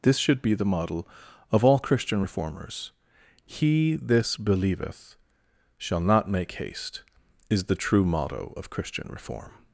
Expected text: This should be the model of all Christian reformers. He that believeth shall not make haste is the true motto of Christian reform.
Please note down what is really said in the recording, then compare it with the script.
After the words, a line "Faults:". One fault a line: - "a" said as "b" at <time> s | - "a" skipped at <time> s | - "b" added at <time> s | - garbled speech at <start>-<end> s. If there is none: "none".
This should be the model of all Christian reformers. He this believeth shall not make haste is the true motto of Christian reform.
Faults:
- "that" said as "this" at 4.0 s